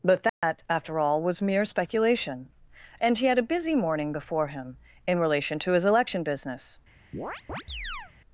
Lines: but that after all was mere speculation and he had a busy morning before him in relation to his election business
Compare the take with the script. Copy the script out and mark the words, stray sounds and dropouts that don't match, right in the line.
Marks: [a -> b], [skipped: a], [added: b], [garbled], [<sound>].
but that [dropout] after all was mere speculation and he had a busy morning before him in relation to his election business [chirp]